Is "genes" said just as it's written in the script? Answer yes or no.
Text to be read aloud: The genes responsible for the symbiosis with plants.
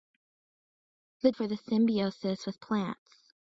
no